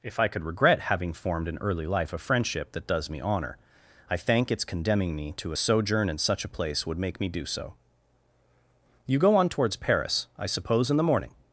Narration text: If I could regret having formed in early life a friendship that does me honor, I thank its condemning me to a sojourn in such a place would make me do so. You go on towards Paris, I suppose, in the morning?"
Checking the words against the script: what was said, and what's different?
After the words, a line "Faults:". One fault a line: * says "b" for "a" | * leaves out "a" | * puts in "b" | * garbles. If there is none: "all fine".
If I could regret having formed in early life a friendship that does me honor, I thank its condemning me to a sojourn in such a place would make me do so. You go on towards Paris, I suppose, in the morning?"
Faults:
all fine